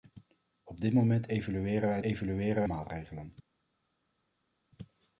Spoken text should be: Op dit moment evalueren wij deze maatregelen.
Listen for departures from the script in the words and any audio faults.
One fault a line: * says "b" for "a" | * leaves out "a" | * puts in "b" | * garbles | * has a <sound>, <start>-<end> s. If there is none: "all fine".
* says "evalueren" for "deze"